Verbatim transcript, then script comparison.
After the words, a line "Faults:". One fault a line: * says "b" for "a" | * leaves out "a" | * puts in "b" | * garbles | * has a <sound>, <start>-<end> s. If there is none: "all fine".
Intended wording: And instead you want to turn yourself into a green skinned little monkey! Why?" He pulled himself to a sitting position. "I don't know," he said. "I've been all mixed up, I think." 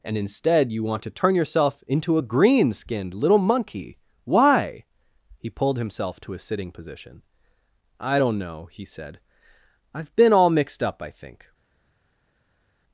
And instead you want to turn yourself into a green skinned little monkey! Why?" He pulled himself to a sitting position. "I don't know," he said. "I've been all mixed up, I think."
Faults:
all fine